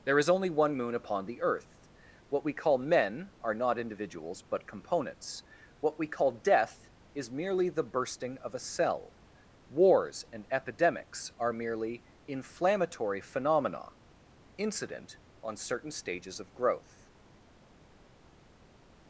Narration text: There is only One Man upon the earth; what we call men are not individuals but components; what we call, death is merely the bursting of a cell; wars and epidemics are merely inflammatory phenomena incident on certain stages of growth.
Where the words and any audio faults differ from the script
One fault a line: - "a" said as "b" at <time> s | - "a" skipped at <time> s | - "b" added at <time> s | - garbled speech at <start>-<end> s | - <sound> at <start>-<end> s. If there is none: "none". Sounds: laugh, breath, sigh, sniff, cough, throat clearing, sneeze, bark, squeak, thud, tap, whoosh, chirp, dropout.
- "Man" said as "Moon" at 0.8 s